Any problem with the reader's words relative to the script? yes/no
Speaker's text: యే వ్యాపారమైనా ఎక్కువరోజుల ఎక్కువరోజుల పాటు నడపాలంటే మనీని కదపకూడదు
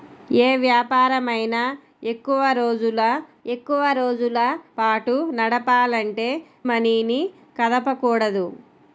no